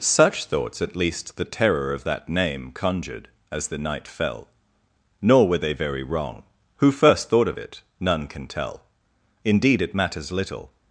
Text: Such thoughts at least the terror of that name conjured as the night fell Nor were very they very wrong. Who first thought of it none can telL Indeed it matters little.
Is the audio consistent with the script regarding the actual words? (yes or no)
no